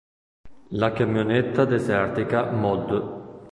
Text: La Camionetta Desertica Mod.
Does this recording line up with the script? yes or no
yes